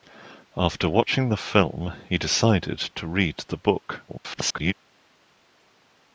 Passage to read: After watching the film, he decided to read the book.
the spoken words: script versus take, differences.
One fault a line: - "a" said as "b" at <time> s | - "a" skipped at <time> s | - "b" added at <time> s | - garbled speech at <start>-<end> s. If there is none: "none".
- garbled speech at 4.1-4.7 s